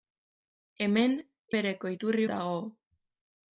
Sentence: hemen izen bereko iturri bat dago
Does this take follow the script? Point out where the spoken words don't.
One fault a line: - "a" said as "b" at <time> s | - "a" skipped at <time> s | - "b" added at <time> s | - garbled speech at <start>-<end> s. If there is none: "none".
- "izen" skipped at 1.1 s
- "bat" skipped at 2.3 s